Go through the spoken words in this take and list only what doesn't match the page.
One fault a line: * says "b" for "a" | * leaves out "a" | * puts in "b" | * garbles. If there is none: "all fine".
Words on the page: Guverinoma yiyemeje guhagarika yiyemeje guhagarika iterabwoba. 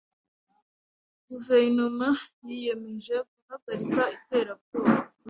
* leaves out "yiyemeje guhagarika"